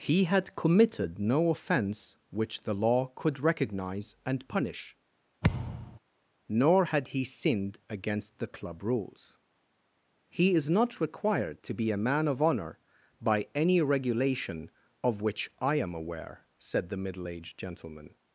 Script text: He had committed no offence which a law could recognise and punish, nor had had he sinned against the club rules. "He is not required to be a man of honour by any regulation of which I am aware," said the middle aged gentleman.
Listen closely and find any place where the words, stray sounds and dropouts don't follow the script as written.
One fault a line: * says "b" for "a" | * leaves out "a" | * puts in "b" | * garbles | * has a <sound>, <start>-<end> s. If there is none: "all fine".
* says "the" for "a"
* has a thud, 5.4-6.0 s
* leaves out "had"